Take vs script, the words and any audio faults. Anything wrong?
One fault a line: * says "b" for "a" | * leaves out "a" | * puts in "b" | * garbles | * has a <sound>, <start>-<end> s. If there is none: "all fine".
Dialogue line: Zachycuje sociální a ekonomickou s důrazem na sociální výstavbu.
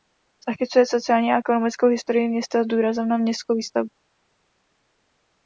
* puts in "historii města"
* says "městskou" for "sociální"